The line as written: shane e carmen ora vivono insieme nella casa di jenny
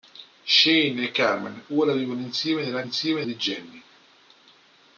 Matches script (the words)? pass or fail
fail